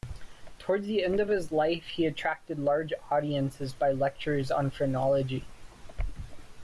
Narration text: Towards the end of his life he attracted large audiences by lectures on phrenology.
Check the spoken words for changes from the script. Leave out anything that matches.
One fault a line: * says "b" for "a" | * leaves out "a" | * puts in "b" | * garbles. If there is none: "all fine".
all fine